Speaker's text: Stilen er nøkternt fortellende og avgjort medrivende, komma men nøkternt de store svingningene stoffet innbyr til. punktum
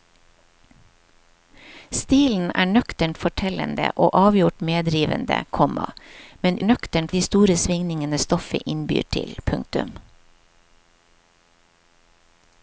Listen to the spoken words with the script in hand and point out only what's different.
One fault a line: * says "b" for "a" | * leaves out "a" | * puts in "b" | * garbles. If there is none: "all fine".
all fine